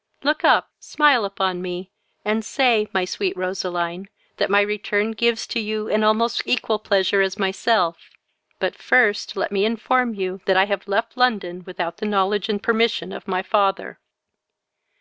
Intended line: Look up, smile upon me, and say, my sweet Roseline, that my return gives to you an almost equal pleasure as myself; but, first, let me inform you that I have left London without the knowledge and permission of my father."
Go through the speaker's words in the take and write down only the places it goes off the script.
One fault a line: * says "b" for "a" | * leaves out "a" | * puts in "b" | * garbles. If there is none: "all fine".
all fine